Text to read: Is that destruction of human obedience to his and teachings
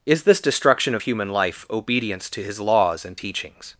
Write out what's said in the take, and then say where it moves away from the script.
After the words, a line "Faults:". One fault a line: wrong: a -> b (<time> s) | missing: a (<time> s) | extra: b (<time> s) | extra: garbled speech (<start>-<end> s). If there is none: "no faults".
Is this destruction of human life obedience to his laws and teachings
Faults:
wrong: that -> this (0.2 s)
extra: life (1.3 s)
extra: laws (2.6 s)